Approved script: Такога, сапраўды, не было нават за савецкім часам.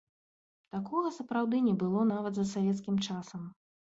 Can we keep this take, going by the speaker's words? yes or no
yes